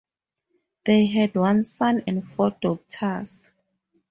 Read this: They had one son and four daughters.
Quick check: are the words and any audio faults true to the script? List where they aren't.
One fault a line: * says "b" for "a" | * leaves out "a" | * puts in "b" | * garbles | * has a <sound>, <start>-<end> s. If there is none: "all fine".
all fine